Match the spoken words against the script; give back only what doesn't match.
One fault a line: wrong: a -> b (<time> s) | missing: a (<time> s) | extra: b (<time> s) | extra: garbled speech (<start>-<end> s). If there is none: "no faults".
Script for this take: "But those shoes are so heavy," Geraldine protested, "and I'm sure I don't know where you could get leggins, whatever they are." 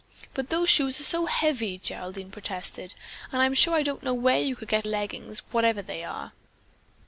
no faults